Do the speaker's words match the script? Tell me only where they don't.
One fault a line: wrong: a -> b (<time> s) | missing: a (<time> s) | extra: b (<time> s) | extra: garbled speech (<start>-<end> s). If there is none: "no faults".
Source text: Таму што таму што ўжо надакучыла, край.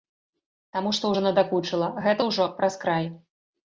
wrong: таму што -> ўжо надакучыла гэта (1.1 s)
wrong: надакучыла -> праз (2.6 s)